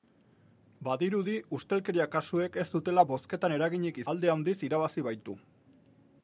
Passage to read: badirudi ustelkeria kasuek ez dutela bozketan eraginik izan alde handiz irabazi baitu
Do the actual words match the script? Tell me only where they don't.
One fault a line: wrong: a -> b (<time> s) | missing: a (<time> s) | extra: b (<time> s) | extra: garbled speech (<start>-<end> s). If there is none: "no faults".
missing: izan (4.0 s)